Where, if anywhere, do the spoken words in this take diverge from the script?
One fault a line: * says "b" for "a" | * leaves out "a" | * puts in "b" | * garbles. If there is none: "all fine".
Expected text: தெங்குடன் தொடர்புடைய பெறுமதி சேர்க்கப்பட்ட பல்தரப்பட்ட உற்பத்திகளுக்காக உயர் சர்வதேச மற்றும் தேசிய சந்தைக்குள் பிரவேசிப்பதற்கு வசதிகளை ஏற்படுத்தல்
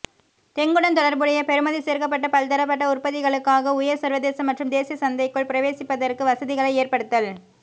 all fine